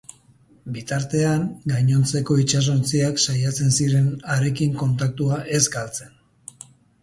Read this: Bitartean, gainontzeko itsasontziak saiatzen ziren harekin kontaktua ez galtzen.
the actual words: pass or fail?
pass